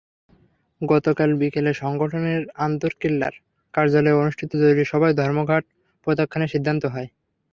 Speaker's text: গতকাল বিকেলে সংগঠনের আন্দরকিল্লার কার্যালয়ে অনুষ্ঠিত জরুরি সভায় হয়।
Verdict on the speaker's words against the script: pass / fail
fail